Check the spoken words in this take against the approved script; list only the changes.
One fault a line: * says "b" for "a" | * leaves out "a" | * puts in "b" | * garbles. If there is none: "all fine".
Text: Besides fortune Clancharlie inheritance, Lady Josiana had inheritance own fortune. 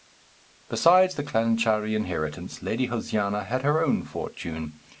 * says "the" for "fortune"
* says "her" for "inheritance"